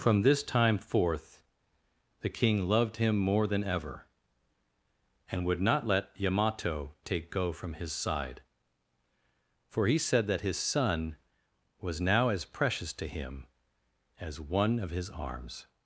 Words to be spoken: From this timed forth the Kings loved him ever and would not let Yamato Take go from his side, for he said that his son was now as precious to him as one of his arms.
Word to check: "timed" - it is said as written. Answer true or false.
false